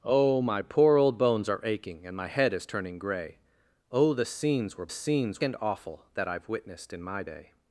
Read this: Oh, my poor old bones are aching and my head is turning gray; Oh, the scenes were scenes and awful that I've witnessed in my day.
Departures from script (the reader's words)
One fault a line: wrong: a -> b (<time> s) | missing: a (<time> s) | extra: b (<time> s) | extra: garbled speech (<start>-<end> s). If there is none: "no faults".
no faults